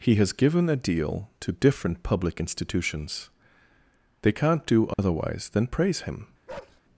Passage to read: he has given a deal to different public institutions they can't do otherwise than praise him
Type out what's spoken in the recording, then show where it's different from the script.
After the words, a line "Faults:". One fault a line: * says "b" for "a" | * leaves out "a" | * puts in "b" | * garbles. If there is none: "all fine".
he has given a deal to different public institutions they can't do otherwise than praise him
Faults:
all fine